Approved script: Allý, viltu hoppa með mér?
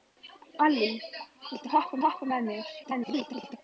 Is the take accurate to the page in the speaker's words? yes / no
no